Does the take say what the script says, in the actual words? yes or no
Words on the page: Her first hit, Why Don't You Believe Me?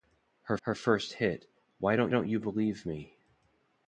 no